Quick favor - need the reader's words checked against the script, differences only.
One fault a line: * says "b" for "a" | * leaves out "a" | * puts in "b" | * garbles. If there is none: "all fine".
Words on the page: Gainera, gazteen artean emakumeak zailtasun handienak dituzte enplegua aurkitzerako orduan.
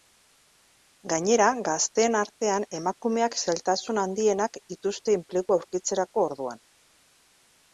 all fine